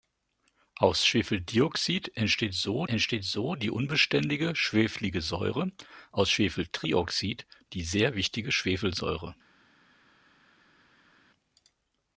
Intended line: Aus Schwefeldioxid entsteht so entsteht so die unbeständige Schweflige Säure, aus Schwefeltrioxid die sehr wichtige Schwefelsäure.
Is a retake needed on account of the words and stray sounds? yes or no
no